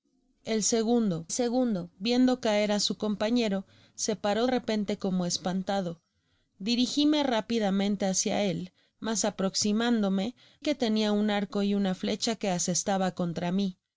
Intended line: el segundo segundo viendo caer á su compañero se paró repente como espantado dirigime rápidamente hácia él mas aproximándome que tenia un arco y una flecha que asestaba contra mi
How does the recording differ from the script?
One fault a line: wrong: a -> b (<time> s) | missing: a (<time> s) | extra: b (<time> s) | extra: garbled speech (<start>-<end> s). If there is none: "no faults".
no faults